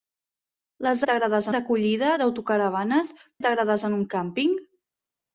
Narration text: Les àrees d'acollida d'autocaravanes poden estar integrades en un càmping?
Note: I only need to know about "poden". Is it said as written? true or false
false